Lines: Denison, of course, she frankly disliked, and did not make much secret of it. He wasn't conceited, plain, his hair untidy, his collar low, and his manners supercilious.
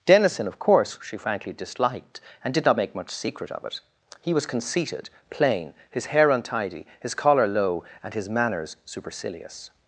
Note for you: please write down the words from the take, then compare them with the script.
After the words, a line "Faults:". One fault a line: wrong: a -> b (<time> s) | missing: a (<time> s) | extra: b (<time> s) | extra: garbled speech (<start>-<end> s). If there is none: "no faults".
Denison, of course, she frankly disliked, and did not make much secret of it. He was conceited, plain, his hair untidy, his collar low, and his manners supercilious.
Faults:
wrong: wasn't -> was (4.3 s)